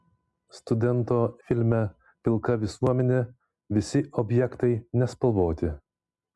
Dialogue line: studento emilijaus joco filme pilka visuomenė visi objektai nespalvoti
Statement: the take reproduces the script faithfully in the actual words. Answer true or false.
false